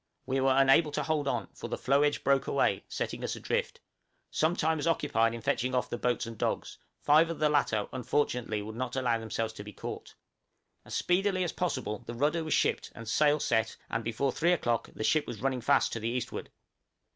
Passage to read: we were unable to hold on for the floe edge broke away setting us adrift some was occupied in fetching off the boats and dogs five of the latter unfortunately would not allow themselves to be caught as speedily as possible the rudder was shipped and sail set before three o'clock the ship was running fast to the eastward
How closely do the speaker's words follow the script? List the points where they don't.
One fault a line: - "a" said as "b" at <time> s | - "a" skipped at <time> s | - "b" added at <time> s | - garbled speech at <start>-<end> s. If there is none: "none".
- "time" added at 4.5 s
- "and" added at 13.9 s